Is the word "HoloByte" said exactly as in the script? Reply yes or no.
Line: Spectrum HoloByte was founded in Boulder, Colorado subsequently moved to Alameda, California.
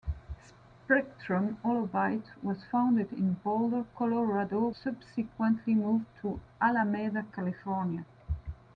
yes